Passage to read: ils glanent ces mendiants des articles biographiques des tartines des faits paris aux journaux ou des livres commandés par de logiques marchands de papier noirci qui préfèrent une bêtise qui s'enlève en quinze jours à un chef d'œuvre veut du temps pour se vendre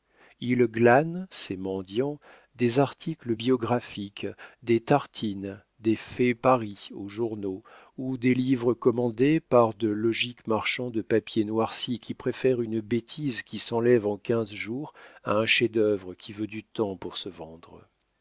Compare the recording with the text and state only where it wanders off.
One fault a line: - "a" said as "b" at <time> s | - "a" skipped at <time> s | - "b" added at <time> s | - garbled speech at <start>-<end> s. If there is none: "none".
- "qui" added at 16.1 s